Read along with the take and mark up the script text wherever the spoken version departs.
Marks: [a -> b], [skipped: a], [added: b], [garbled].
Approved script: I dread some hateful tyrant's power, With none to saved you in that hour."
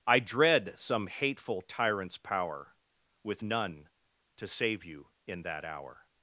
I dread some hateful tyrant's power, With none to [saved -> save] you in that hour."